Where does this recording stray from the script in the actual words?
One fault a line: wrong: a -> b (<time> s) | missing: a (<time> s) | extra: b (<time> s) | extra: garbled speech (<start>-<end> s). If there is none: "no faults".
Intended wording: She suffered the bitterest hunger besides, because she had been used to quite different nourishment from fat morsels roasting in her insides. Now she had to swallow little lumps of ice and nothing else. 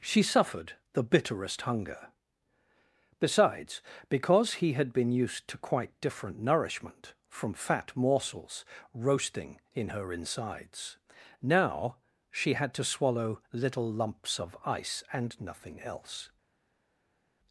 wrong: she -> he (4.5 s)